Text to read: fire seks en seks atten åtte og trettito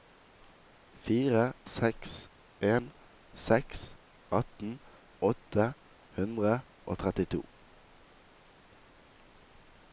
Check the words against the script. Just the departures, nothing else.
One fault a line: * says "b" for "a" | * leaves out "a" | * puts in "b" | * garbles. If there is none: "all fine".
* puts in "hundre"